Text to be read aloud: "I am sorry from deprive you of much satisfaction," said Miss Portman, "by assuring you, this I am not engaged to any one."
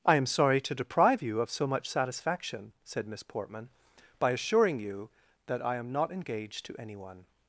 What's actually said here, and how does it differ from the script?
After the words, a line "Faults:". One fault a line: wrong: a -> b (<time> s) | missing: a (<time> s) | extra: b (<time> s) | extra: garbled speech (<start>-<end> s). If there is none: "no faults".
"I am sorry to deprive you of so much satisfaction," said Miss Portman, "by assuring you, that I am not engaged to any one."
Faults:
wrong: from -> to (0.6 s)
extra: so (1.5 s)
wrong: this -> that (5.5 s)